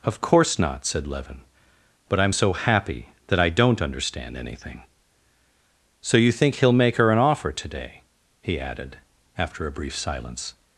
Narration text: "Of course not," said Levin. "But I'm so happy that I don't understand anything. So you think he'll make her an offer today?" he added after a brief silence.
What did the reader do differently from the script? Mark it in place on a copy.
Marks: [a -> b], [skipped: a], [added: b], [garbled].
"Of course not," said Levin. "But I'm so happy that I don't understand anything. So you think he'll make her an offer today?" he added after a brief silence.